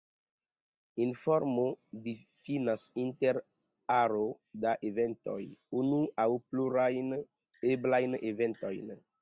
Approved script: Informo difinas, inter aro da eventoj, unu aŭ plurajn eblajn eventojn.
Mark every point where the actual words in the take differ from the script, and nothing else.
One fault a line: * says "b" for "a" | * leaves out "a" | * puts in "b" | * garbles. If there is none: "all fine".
all fine